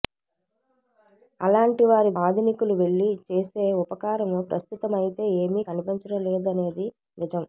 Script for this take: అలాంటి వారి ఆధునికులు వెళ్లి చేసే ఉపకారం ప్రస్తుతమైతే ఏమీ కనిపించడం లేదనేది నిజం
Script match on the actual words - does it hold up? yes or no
yes